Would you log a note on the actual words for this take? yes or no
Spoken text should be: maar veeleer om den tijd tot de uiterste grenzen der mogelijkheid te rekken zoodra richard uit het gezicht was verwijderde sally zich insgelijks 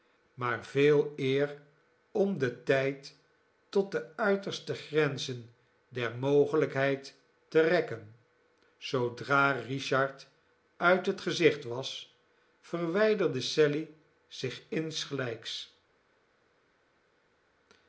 no